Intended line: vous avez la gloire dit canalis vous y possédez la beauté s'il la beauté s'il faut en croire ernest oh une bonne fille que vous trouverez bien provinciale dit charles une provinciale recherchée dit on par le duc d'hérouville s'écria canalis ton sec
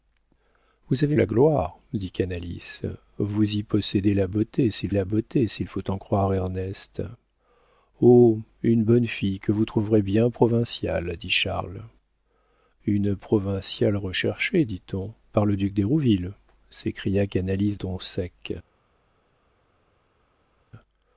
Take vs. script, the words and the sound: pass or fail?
pass